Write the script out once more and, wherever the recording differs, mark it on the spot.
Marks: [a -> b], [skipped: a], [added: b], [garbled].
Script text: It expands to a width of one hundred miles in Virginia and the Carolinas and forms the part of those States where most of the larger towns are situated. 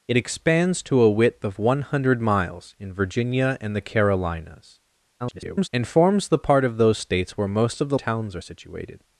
It expands to a width of one hundred miles in Virginia and the Carolinas [garbled] and forms the part of those States where most of the [skipped: larger] towns are situated.